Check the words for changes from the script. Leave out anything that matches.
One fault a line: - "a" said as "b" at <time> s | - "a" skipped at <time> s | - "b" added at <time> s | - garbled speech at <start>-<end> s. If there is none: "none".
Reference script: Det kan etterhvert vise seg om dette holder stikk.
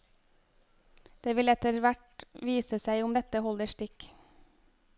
- "kan" said as "vil" at 1.4 s